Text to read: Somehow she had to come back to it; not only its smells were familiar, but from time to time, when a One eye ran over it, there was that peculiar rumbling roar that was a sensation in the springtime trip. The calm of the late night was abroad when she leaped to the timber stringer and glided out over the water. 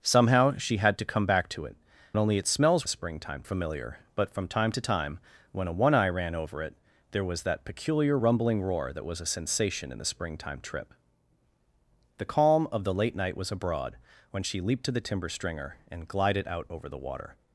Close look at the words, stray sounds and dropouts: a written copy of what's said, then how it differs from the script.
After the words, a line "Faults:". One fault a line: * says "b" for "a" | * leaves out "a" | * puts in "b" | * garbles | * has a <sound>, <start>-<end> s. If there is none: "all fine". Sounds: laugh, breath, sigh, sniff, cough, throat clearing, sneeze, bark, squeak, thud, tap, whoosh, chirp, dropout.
Somehow she had to come back to it; only its smells springtime familiar, but from time to time, when a One eye ran over it, there was that peculiar rumbling roar that was a sensation in the springtime trip. The calm of the late night was abroad when she leaped to the timber stringer and glided out over the water.
Faults:
* leaves out "not"
* says "springtime" for "were"